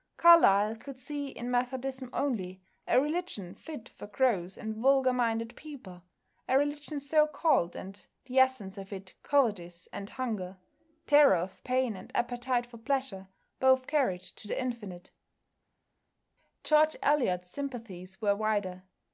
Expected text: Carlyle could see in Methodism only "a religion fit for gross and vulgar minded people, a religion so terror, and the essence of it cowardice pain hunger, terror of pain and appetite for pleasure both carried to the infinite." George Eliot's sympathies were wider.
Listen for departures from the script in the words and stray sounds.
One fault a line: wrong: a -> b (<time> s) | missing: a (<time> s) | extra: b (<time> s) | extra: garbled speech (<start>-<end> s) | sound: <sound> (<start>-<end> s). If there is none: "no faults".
wrong: terror -> called (7.3 s)
wrong: pain -> and (9.9 s)